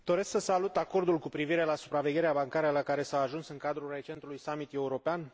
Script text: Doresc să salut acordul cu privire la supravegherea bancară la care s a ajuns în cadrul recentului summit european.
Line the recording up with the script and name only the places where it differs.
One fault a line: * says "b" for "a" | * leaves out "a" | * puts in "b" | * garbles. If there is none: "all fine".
all fine